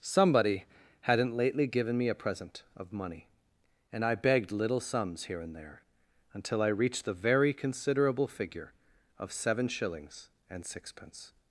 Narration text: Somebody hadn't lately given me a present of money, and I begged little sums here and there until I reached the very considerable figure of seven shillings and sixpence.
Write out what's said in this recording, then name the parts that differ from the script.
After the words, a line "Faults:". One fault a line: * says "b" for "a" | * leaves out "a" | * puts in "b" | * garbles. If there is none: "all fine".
Somebody hadn't lately given me a present of money, and I begged little sums here and there until I reached the very considerable figure of seven shillings and sixpence.
Faults:
all fine